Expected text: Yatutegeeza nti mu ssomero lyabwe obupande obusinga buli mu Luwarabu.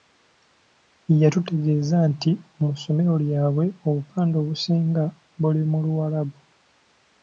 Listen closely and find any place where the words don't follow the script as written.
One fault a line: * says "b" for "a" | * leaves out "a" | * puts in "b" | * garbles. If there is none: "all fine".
all fine